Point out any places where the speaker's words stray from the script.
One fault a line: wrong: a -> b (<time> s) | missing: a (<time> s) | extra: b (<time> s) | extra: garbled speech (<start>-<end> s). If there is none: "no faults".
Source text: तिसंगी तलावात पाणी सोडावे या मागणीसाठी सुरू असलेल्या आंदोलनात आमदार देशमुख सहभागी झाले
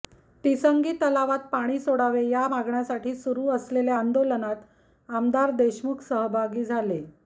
no faults